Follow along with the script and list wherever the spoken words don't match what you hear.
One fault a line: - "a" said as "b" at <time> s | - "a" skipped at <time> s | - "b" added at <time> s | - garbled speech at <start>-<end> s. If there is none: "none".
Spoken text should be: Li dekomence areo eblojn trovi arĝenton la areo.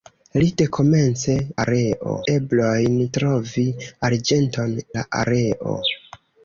none